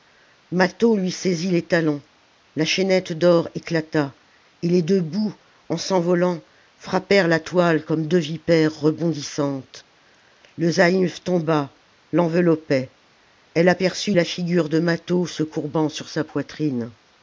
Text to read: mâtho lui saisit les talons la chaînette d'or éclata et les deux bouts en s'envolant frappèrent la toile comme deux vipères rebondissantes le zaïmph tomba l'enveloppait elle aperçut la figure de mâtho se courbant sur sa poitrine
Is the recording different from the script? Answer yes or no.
no